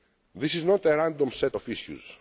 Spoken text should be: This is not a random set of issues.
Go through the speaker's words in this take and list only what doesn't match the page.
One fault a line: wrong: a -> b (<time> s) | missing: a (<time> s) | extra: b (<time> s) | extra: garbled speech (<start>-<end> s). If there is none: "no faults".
no faults